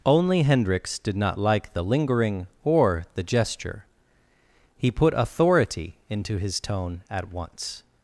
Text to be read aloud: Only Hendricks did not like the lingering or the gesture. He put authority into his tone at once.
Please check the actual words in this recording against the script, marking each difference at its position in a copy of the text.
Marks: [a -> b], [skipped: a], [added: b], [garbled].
Only Hendricks did not like the lingering or the gesture. He put authority into his tone at once.